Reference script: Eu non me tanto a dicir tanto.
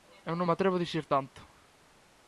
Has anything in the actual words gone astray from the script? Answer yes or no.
yes